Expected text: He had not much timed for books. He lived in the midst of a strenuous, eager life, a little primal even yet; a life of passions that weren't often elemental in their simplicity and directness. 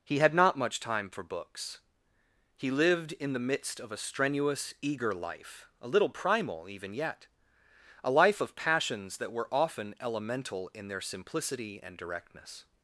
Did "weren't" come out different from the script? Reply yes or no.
yes